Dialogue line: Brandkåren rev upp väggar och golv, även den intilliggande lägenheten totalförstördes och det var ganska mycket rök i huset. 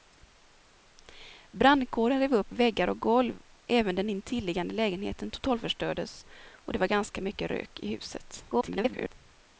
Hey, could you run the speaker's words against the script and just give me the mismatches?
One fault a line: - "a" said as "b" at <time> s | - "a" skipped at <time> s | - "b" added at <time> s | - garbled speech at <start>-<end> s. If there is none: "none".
- garbled speech at 8.5-9.1 s